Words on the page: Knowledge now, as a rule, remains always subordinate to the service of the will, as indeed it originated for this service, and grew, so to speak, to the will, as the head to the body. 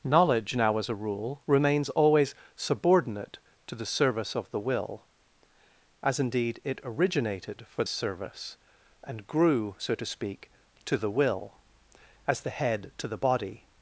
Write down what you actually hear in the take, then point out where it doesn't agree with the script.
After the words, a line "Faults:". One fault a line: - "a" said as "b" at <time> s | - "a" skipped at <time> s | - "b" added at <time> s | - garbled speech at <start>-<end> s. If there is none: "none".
Knowledge now, as a rule, remains always subordinate to the service of the will, as indeed it originated for service, and grew, so to speak, to the will, as the head to the body.
Faults:
- "this" skipped at 7.8 s